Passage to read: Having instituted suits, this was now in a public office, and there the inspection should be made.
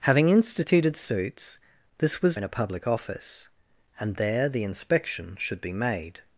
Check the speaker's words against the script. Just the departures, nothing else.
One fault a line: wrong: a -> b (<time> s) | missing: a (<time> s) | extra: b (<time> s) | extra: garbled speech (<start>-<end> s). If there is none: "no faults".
missing: now (2.4 s)